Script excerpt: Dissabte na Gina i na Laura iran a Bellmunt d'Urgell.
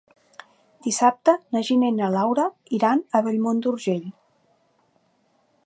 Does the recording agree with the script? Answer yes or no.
yes